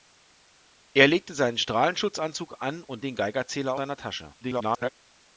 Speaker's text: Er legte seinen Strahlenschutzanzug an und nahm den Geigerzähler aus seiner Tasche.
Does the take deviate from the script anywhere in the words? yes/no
yes